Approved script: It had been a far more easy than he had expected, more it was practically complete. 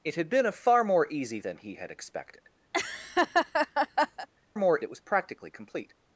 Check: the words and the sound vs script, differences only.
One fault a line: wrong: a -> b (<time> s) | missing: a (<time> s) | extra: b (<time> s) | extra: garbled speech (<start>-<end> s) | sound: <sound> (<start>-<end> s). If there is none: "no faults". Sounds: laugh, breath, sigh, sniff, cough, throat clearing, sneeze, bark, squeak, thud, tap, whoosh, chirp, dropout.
sound: laugh (2.7-4.3 s)